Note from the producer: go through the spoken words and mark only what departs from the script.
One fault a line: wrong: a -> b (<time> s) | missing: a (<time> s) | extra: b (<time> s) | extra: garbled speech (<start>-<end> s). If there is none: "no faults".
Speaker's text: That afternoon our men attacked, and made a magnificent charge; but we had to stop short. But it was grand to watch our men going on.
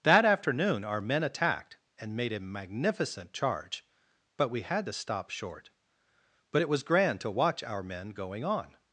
no faults